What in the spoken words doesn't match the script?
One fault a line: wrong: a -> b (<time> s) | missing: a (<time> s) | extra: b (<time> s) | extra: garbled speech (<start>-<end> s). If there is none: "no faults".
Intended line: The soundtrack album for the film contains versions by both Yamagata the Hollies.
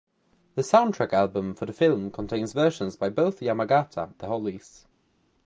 no faults